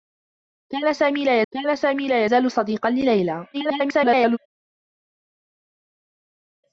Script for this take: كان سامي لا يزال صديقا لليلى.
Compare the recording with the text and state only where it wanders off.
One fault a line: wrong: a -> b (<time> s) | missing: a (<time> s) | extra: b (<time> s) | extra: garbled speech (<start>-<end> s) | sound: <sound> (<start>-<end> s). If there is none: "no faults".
extra: كان سامي لا (1.5 s)
extra: garbled speech (3.5-4.4 s)